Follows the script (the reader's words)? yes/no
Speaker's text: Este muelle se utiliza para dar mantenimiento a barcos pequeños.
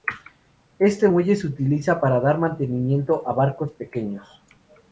yes